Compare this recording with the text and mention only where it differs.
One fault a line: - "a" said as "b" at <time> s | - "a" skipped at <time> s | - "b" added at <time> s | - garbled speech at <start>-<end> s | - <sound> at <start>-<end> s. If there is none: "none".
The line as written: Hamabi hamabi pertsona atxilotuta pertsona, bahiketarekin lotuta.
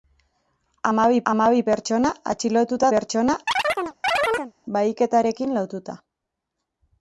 - chirp at 3.5-4.5 s